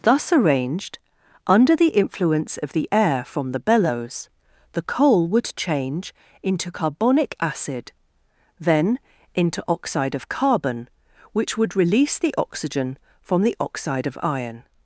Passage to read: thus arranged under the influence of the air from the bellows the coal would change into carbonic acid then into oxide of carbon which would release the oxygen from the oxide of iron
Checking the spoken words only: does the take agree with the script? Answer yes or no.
yes